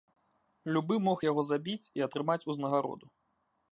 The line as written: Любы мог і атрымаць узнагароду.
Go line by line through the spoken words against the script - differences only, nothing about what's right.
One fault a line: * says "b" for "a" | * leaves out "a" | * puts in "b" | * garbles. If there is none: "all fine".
* puts in "яго забіць"